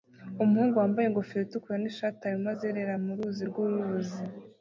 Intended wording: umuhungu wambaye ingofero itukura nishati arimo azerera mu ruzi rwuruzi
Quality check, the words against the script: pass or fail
pass